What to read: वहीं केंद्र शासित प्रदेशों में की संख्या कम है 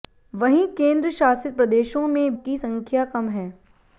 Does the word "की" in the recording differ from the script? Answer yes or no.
no